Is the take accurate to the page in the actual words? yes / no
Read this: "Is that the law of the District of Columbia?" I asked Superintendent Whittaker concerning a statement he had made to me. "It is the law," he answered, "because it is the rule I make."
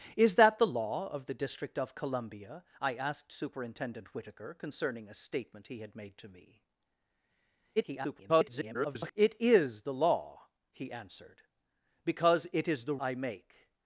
no